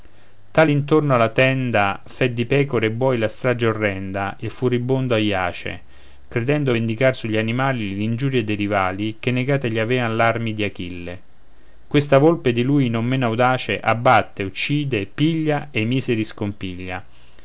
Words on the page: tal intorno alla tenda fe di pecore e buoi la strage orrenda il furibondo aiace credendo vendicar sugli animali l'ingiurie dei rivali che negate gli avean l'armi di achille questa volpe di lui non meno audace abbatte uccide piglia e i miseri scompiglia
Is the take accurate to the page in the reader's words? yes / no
yes